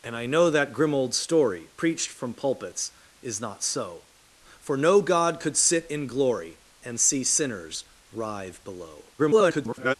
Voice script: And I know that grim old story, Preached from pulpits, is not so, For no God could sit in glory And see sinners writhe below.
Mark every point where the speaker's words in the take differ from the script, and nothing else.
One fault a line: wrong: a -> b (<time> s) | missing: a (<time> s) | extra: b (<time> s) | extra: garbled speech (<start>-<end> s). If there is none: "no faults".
extra: garbled speech (9.2-9.9 s)